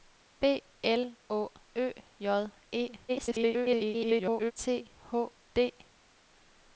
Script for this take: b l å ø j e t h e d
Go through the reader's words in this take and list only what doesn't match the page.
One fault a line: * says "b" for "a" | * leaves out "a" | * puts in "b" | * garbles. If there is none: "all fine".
* garbles
* leaves out "e"